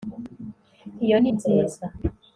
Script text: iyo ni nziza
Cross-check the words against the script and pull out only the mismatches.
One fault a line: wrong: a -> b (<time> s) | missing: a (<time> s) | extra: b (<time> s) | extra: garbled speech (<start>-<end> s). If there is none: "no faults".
no faults